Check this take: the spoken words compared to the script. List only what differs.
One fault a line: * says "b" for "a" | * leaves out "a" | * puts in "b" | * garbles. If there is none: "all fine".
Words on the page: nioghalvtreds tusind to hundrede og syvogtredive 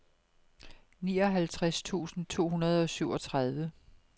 all fine